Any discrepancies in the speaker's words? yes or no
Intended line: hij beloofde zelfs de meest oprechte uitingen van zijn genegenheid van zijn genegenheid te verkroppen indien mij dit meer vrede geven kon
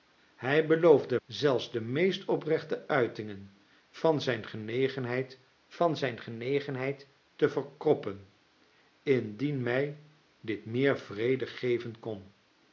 no